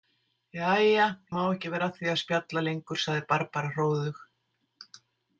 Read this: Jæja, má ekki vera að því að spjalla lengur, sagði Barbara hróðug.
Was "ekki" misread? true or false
false